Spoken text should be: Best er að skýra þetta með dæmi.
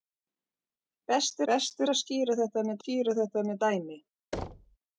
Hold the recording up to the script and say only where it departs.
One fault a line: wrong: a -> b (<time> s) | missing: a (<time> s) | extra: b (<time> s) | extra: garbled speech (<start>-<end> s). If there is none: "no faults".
extra: best (1.5 s)
extra: skýra þetta með (2.8 s)